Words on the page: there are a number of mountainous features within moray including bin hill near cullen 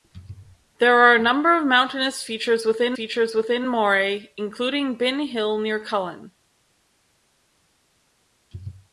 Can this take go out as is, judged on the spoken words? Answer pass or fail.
fail